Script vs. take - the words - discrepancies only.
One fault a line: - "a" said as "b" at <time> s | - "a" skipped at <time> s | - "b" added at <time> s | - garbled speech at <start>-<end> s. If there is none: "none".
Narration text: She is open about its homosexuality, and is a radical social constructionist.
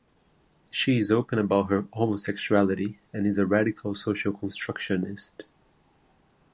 - "its" said as "her" at 1.7 s